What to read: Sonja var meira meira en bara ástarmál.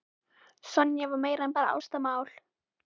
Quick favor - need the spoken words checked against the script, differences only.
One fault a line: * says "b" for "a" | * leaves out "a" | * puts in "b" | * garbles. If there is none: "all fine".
* leaves out "meira"